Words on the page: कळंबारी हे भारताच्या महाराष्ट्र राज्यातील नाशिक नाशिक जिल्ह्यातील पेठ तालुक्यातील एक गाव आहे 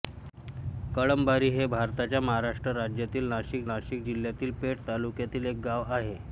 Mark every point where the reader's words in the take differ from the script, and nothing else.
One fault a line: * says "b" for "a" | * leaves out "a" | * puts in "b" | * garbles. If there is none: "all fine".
all fine